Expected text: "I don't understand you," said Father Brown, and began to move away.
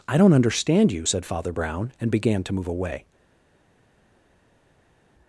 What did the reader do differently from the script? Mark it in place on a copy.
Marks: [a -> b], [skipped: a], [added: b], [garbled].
"I don't understand you," said Father Brown, and began to move away.